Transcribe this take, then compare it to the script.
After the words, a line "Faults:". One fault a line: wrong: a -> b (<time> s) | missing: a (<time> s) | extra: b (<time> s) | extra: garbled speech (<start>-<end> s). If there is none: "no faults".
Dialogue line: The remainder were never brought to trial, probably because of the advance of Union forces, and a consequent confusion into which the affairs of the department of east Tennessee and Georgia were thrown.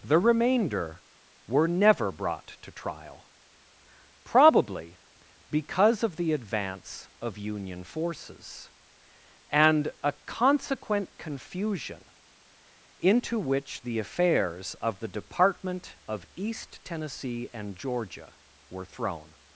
The remainder were never brought to trial, probably because of the advance of Union forces, and a consequent confusion into which the affairs of the department of east Tennessee and Georgia were thrown.
Faults:
no faults